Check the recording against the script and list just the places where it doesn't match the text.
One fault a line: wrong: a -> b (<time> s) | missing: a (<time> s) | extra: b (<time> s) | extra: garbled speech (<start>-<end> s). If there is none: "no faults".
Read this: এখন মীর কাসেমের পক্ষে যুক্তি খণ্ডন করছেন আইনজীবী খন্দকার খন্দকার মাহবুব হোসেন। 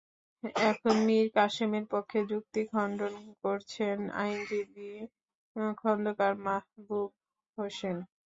missing: খন্দকার (6.3 s)